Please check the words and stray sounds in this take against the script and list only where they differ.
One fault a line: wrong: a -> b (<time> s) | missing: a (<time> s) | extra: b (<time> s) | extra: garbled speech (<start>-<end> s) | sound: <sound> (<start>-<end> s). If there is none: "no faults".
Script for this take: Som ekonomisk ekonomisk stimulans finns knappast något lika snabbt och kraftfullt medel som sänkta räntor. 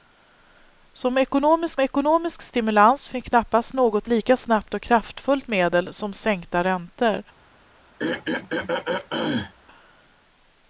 sound: throat clearing (8.0-9.5 s)